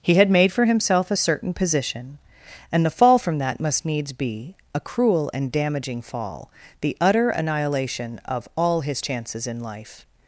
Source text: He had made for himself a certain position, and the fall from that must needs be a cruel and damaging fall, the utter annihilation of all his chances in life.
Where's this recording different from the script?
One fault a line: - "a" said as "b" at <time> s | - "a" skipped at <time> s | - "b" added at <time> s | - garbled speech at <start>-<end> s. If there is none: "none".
none